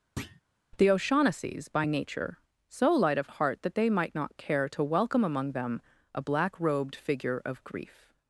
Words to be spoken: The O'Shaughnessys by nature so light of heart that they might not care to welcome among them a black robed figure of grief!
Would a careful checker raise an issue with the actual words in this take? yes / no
no